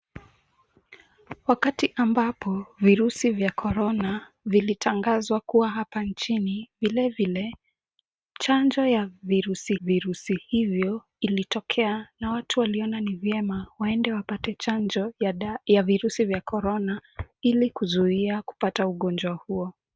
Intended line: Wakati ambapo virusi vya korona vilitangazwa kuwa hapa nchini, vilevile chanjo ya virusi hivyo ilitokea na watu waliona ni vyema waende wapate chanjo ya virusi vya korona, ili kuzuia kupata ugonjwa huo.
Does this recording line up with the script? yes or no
no